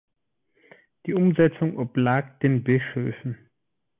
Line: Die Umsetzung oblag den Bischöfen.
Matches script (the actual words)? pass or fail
pass